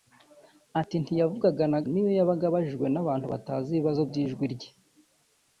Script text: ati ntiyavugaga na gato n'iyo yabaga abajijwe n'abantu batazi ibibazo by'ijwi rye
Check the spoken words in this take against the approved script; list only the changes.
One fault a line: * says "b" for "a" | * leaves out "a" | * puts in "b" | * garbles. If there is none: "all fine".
* leaves out "gato"